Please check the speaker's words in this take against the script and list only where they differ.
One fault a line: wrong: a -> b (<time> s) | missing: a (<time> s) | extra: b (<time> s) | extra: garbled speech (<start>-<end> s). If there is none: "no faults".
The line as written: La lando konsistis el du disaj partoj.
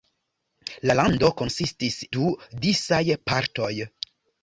missing: el (2.0 s)